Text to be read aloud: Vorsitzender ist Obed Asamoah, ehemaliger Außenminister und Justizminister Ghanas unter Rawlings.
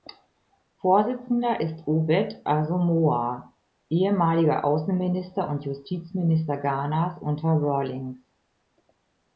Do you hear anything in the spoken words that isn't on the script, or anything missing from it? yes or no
no